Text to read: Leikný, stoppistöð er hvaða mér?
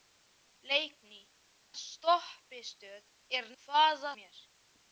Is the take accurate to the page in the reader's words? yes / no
yes